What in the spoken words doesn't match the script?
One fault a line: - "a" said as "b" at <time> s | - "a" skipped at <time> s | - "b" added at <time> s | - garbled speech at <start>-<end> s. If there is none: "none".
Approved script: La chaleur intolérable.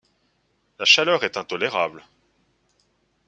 - "est" added at 1.2 s